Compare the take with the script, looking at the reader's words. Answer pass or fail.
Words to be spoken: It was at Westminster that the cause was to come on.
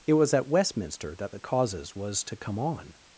fail